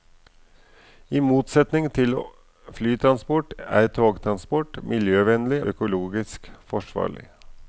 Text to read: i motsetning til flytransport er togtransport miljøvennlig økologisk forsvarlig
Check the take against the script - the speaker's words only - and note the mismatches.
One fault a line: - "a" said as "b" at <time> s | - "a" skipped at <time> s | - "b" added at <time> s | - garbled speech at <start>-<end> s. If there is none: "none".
none